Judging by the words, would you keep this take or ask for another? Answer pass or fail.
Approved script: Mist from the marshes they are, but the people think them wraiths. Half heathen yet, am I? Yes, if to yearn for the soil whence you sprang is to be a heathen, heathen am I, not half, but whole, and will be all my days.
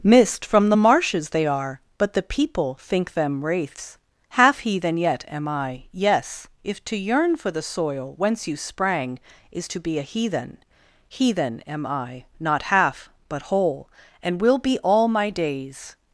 pass